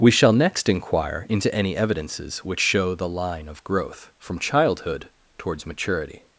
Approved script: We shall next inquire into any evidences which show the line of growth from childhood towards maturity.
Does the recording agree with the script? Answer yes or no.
yes